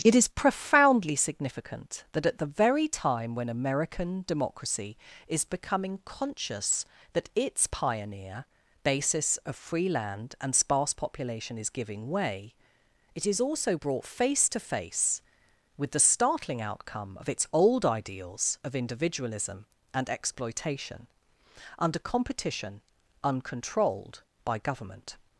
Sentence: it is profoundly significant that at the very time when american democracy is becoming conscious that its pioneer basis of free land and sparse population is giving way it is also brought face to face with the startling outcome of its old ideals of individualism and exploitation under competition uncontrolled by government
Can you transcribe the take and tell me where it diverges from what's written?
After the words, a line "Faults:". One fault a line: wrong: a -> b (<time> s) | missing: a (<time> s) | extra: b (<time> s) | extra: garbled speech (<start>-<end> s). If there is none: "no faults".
it is profoundly significant that at the very time when american democracy is becoming conscious that its pioneer basis of free land and sparse population is giving way it is also brought face to face with the startling outcome of its old ideals of individualism and exploitation under competition uncontrolled by government
Faults:
no faults